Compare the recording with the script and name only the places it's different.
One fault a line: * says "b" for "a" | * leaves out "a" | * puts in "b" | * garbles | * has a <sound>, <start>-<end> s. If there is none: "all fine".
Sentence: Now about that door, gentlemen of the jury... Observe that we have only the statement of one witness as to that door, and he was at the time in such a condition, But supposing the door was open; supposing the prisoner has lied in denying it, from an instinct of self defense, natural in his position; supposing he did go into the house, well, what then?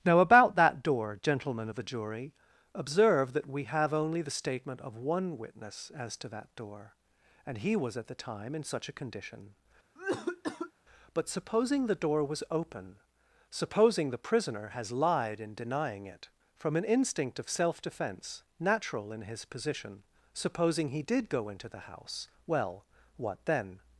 * has a cough, 10.0-10.7 s